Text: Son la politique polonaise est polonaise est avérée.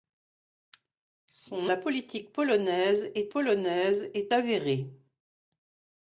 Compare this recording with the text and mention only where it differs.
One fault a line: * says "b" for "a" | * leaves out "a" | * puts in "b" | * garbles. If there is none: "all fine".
all fine